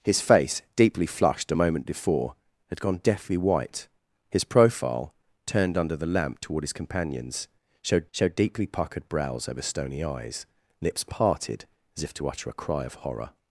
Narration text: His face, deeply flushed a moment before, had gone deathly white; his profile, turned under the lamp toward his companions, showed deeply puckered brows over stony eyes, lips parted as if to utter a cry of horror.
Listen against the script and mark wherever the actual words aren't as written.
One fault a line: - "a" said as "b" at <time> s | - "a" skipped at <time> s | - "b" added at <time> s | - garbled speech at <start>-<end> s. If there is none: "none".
- "showed" added at 8.1 s